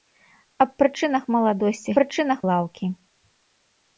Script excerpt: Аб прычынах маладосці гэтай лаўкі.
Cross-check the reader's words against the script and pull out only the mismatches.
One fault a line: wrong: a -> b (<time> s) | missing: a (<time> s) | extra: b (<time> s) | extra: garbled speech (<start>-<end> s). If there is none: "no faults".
wrong: гэтай -> прычынах (2.0 s)